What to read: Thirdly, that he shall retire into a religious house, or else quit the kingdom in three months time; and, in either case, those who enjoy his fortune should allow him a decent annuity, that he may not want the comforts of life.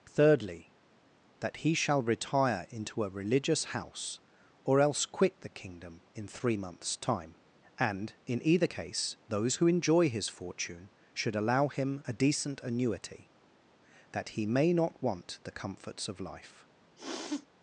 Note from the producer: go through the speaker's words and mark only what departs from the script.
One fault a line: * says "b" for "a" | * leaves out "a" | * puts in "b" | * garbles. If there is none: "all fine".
all fine